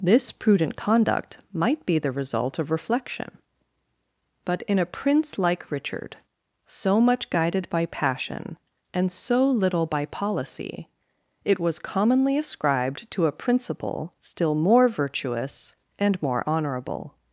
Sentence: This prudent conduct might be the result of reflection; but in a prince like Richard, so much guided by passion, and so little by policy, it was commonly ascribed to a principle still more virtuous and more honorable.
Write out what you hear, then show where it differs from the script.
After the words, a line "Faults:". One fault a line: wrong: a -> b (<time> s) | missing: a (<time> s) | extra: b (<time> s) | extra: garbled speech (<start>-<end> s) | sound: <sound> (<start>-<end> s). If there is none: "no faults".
This prudent conduct might be the result of reflection; but in a prince like Richard, so much guided by passion, and so little by policy, it was commonly ascribed to a principle still more virtuous and more honorable.
Faults:
no faults